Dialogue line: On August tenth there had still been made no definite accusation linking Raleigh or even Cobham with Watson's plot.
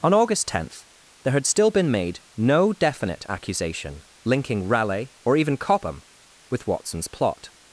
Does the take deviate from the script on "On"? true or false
false